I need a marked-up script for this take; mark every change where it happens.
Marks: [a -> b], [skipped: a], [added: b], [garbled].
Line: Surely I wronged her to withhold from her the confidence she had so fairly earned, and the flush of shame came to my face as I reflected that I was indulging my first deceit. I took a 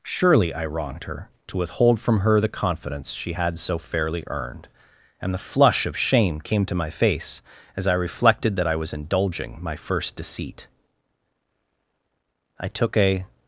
Surely I wronged her to withhold from her the confidence she had so fairly earned, and the flush of shame came to my face as I reflected that I was indulging my first deceit. I took a